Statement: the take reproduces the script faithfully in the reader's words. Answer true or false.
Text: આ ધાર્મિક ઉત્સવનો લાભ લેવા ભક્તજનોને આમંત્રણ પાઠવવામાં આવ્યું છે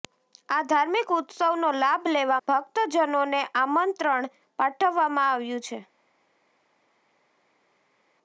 true